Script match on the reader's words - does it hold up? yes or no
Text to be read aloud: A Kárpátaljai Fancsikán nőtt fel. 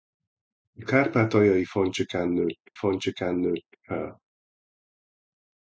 no